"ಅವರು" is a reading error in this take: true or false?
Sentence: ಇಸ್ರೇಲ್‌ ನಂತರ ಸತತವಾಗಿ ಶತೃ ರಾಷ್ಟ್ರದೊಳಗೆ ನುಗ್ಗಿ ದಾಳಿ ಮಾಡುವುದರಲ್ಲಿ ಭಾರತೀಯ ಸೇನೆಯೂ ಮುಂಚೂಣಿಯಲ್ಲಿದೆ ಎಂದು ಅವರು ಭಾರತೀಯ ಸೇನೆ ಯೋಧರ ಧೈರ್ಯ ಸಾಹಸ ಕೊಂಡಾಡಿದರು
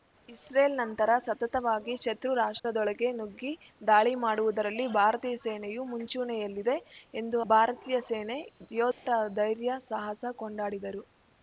true